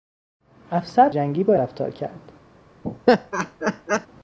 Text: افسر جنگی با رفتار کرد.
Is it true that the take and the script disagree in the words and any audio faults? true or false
true